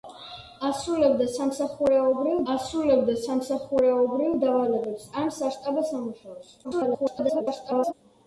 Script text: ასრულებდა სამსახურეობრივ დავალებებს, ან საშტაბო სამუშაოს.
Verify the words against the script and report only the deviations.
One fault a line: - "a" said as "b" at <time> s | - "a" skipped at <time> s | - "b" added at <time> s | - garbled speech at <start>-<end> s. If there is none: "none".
- "ასრულებდა სამსახურეობრივ" added at 2.5 s
- garbled speech at 6.6-7.9 s